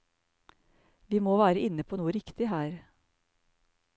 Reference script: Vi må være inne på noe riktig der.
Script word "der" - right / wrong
wrong